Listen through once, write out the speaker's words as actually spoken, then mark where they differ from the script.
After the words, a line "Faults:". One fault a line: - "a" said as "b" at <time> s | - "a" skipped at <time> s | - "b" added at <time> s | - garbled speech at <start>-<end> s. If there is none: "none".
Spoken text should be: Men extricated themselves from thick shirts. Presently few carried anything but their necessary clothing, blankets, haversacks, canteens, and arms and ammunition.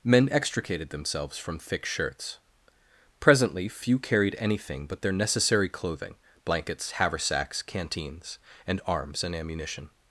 Men extricated themselves from thick shirts. Presently few carried anything but their necessary clothing, blankets, haversacks, canteens, and arms and ammunition.
Faults:
none